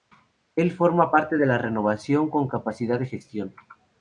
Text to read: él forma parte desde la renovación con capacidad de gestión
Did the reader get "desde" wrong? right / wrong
wrong